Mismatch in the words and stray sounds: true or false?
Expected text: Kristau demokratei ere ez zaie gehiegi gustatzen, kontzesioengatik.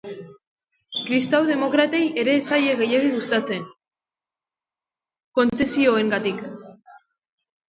false